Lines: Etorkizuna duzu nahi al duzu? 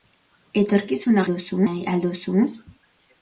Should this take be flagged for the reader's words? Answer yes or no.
no